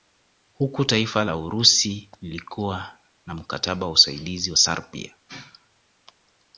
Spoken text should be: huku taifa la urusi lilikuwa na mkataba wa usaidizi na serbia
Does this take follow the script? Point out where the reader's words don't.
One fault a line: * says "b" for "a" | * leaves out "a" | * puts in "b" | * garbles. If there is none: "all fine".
all fine